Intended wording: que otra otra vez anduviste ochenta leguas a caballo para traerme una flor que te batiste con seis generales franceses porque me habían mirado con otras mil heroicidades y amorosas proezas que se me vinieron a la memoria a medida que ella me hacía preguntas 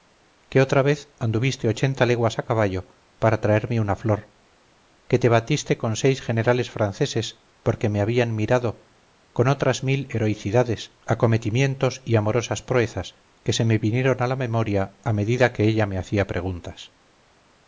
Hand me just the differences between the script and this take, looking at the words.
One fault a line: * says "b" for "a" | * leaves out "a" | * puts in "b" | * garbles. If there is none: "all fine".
* leaves out "otra"
* puts in "acometimientos"